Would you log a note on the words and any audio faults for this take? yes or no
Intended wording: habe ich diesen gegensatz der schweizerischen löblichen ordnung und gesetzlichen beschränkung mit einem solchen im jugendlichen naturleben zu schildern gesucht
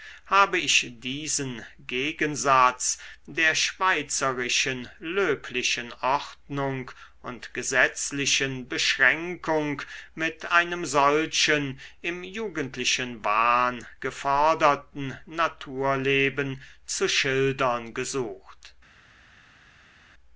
yes